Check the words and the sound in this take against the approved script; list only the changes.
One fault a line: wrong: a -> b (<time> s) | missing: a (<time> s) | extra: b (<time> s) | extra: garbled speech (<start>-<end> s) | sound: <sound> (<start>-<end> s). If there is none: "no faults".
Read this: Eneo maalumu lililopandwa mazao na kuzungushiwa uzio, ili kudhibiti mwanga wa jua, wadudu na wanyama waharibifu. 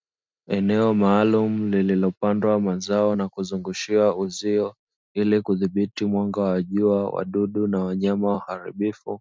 no faults